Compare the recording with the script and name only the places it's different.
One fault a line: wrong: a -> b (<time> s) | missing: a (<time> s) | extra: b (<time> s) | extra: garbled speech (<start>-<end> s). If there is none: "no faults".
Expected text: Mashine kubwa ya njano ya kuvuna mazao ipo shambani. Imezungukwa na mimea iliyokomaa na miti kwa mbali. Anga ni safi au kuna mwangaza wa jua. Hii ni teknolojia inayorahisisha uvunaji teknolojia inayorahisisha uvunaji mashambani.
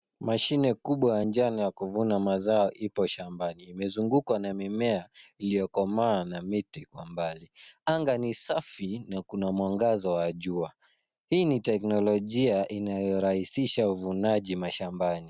wrong: au -> na (9.1 s)
missing: teknolojia inayorahisisha uvunaji (14.6 s)